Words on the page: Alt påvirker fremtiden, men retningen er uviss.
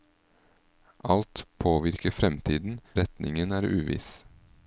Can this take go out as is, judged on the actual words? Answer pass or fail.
fail